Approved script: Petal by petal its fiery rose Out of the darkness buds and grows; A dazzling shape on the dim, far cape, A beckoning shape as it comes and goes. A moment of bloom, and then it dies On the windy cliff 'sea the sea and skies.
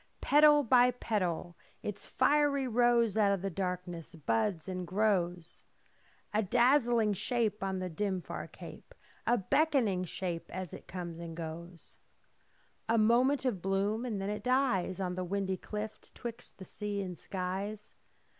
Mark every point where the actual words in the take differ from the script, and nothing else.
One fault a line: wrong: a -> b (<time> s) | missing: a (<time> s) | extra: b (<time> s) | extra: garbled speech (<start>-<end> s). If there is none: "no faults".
wrong: sea -> twixt (16.1 s)